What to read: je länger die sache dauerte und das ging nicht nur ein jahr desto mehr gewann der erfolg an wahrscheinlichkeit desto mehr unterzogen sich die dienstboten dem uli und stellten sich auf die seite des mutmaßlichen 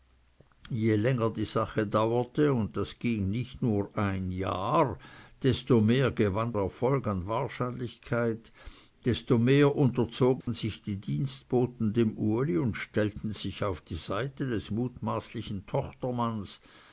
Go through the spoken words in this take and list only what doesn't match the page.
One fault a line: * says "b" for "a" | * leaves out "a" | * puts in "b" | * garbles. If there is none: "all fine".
* leaves out "der"